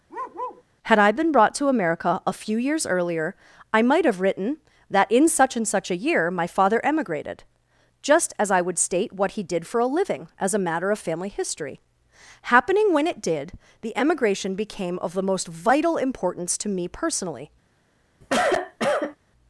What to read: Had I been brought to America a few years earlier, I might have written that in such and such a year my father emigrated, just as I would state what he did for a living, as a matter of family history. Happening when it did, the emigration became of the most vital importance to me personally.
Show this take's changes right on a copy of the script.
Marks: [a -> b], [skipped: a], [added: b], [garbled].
Had I been brought to America a few years earlier, I might have written that in such and such a year my father emigrated, just as I would state what he did for a living, as a matter of family history. Happening when it did, the emigration became of the most vital importance to me personally.